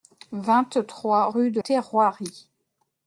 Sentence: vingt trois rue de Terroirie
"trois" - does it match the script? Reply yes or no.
yes